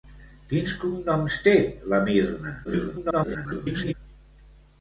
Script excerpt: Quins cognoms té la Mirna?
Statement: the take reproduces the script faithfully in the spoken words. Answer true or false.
false